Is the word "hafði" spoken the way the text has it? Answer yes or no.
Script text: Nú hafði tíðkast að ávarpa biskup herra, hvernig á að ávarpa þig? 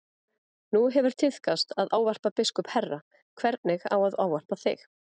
no